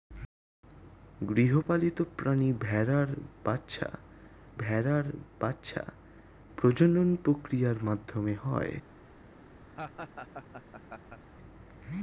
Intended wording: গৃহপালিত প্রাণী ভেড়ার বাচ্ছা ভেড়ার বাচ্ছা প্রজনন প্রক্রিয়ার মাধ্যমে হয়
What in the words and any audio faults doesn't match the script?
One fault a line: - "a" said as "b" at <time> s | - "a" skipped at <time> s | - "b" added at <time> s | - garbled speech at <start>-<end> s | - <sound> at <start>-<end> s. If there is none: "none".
- dropout at 1.6-1.7 s
- laugh at 9.7-11.2 s